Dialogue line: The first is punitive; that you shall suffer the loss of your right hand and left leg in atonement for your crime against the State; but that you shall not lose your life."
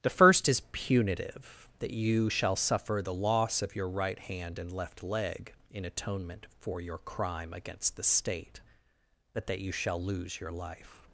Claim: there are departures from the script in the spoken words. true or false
true